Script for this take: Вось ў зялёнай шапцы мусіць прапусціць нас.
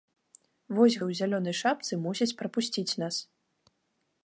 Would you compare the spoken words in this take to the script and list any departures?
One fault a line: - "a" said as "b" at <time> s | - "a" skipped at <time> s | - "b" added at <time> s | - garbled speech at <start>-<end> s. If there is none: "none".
none